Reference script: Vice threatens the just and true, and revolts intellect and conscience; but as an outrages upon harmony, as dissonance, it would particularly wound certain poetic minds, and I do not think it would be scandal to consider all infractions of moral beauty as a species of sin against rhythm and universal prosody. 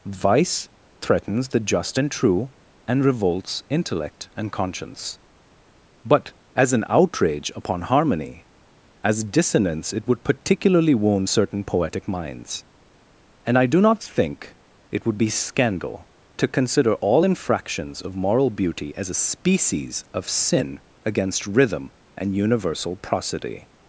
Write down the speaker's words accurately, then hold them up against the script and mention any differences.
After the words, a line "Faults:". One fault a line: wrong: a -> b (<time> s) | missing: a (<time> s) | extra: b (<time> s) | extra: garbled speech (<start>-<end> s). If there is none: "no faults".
Vice threatens the just and true, and revolts intellect and conscience; but as an outrage upon harmony, as dissonance, it would particularly wound certain poetic minds, and I do not think it would be scandal to consider all infractions of moral beauty as a species of sin against rhythm and universal prosody.
Faults:
wrong: outrages -> outrage (6.9 s)